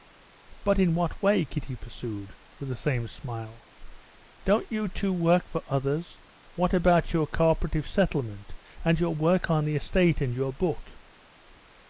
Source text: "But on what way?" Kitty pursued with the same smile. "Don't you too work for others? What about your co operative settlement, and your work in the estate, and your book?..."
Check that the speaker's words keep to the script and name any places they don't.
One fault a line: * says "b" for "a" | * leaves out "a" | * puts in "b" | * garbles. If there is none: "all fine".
* says "in" for "on"
* says "on" for "in"